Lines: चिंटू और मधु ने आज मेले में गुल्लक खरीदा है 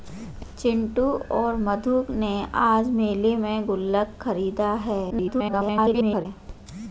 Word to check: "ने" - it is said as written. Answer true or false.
true